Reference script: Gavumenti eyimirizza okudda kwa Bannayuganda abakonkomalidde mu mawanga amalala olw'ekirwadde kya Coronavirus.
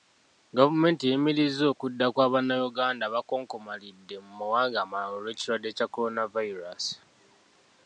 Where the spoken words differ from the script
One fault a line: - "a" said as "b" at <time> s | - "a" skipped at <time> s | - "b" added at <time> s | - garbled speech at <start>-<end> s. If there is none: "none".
none